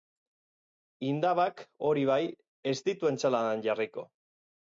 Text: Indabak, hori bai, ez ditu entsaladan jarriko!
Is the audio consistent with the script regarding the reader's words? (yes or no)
yes